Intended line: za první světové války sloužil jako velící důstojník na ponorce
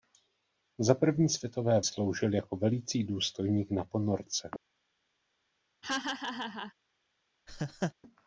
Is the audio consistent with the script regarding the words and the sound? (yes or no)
no